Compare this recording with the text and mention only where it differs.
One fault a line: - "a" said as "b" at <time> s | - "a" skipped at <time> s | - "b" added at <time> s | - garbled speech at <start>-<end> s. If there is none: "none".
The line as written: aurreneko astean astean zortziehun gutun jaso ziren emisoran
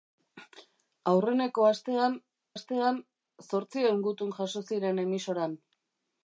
none